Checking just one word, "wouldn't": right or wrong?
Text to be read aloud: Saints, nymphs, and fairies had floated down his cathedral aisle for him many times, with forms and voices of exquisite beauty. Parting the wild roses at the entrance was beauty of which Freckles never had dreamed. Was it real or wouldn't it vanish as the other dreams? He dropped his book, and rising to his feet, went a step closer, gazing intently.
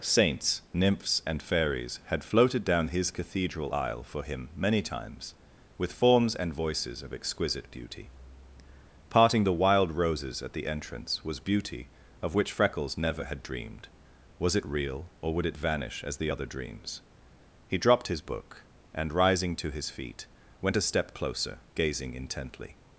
wrong